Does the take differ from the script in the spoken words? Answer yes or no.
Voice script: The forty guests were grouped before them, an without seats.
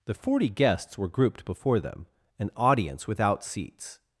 yes